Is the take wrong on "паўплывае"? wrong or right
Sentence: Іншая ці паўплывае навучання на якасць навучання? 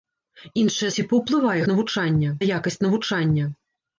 right